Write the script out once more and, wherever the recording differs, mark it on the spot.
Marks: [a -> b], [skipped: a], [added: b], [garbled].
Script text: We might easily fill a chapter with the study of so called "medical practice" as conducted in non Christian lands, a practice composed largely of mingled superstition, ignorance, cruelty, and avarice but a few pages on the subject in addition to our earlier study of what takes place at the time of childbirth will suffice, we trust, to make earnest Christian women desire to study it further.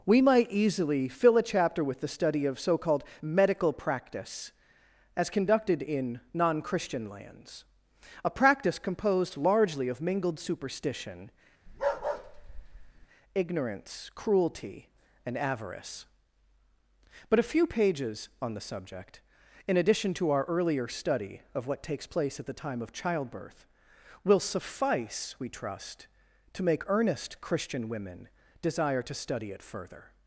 We might easily fill a chapter with the study of so called "medical practice" as conducted in non Christian lands, a practice composed largely of mingled superstition, ignorance, cruelty, and avarice but a few pages on the subject in addition to our earlier study of what takes place at the time of childbirth will suffice, we trust, to make earnest Christian women desire to study it further.